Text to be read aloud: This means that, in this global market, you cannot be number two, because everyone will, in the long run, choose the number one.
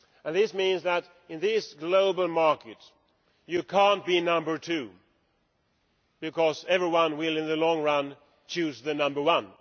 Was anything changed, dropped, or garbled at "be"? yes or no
no